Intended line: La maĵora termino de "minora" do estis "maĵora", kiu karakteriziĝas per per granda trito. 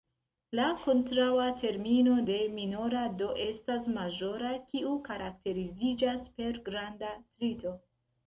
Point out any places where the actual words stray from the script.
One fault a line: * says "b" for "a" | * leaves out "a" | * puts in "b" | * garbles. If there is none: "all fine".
* says "kontraŭa" for "maĵora"
* says "estas" for "estis"
* leaves out "per"